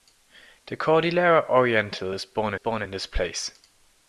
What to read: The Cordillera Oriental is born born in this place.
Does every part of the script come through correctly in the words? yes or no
yes